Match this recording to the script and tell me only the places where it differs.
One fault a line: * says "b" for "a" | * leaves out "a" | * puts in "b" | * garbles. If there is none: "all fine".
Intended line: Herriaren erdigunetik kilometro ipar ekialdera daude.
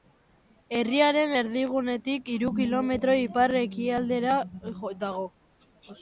* puts in "hiru"
* says "dago" for "daude"